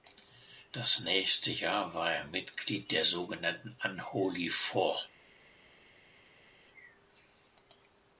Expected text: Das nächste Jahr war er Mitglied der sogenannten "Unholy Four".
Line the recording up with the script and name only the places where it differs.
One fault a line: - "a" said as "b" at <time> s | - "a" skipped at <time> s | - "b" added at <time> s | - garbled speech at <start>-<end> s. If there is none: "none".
none